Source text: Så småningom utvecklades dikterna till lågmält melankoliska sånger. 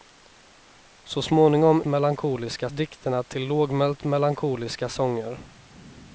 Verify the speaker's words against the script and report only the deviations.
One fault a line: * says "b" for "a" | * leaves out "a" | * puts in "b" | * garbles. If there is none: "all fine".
* says "melankoliska" for "utvecklades"